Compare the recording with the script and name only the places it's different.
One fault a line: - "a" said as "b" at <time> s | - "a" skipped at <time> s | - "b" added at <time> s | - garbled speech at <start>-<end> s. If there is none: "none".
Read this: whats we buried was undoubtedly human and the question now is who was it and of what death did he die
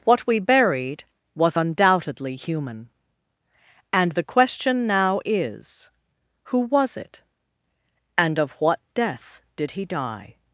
- "whats" said as "what" at 0.0 s